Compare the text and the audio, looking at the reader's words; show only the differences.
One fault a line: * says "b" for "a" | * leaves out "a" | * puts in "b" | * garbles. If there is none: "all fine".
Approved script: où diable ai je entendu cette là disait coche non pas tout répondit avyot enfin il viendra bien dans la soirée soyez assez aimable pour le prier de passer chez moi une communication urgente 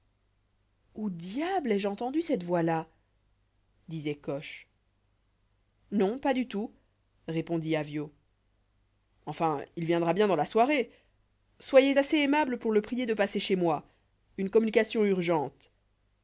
* puts in "voix"
* puts in "du"